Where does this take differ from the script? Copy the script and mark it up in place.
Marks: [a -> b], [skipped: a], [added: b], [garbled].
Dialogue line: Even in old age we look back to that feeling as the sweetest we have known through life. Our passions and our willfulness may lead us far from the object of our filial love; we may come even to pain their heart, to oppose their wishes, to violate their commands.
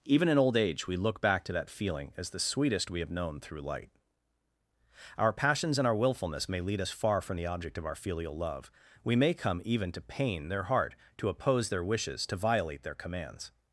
Even in old age we look back to that feeling as the sweetest we have known through [life. -> light] Our passions and our willfulness may lead us far from the object of our filial love; we may come even to pain their heart, to oppose their wishes, to violate their commands.